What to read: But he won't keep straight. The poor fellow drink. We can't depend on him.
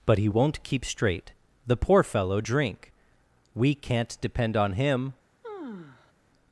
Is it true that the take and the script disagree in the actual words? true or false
false